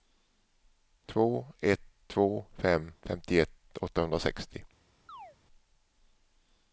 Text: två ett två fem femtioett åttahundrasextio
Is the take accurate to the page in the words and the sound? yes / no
no